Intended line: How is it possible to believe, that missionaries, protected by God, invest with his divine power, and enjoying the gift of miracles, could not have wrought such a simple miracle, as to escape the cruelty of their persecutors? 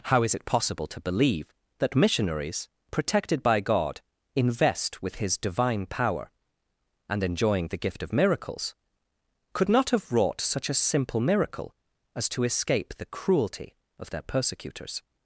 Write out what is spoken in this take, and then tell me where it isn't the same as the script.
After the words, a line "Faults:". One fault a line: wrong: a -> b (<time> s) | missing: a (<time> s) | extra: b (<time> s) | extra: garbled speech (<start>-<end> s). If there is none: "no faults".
How is it possible to believe, that missionaries, protected by God, invest with his divine power, and enjoying the gift of miracles, could not have wrought such a simple miracle, as to escape the cruelty of their persecutors?
Faults:
no faults